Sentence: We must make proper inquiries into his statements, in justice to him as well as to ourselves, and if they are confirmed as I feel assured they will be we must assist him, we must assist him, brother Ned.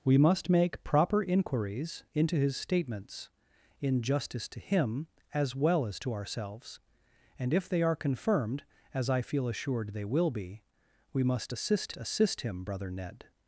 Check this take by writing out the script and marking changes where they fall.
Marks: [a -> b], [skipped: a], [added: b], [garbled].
We must make proper inquiries into his statements, in justice to him as well as to ourselves, and if they are confirmed as I feel assured they will be we must assist [skipped: him, we must] assist him, brother Ned.